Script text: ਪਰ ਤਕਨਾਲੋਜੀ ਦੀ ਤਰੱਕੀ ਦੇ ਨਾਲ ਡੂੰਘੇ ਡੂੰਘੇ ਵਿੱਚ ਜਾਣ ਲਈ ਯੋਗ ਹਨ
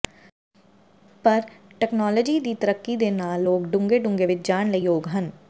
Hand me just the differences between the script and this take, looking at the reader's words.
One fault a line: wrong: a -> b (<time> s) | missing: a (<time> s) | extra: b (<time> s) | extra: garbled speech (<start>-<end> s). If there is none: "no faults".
extra: ਲੋਕ (3.4 s)